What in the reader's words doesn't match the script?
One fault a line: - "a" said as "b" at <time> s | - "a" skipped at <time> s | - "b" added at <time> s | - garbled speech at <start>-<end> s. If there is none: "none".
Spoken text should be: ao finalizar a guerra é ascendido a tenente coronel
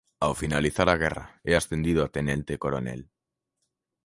none